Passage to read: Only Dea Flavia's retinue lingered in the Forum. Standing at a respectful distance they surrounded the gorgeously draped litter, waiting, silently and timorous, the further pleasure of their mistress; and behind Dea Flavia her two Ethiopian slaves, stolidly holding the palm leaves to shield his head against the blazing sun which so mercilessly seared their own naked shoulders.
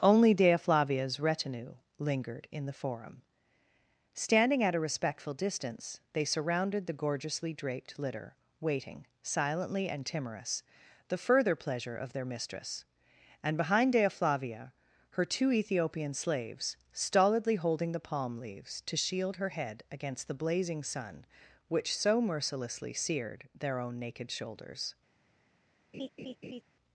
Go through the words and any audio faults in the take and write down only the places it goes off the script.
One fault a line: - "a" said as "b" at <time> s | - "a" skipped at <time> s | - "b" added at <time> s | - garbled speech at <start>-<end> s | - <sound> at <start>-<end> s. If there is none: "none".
- "his" said as "her" at 19.4 s
- laugh at 25.9-26.6 s